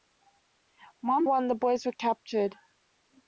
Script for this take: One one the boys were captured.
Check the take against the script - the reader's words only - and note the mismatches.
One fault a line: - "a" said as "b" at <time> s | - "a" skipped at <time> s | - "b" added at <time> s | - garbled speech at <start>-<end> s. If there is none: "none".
none